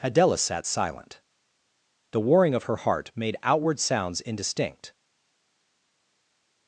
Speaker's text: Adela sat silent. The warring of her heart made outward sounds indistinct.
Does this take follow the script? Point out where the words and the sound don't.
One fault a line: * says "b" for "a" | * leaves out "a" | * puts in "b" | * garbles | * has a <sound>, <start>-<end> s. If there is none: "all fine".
all fine